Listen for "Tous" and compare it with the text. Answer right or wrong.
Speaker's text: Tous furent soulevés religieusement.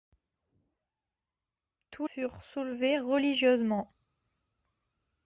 right